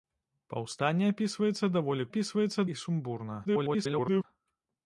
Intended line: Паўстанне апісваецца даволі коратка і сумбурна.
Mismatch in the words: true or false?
true